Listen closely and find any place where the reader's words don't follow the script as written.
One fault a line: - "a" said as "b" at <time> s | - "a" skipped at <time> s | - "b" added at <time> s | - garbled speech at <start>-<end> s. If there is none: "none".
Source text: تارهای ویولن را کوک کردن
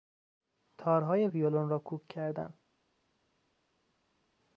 none